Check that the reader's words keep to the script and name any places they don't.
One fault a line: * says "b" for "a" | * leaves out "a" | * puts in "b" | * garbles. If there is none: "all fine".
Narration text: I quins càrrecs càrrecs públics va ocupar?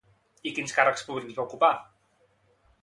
* leaves out "càrrecs"